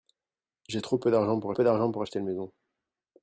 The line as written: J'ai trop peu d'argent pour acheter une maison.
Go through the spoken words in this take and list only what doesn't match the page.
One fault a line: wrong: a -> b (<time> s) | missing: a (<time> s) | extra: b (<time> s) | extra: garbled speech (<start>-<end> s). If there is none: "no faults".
extra: peu d'argent pour (1.5 s)